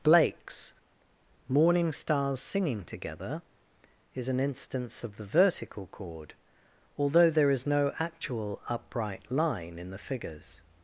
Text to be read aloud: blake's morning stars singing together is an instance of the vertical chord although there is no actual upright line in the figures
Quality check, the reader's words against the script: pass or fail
pass